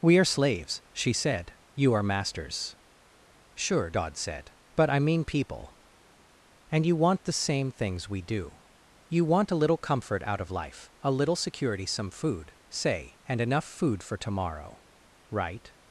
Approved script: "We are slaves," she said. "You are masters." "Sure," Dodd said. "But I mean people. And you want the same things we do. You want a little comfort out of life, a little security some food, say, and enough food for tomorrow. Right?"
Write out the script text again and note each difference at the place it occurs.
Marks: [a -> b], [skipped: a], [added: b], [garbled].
"We are slaves," she said. "You are masters." "Sure," Dodd said. "But I mean people. And you want the same things we do. You want a little comfort out of life, a little security some food, say, and enough food for tomorrow. Right?"